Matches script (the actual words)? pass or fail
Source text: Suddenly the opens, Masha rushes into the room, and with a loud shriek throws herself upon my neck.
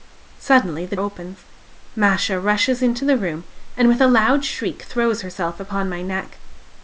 pass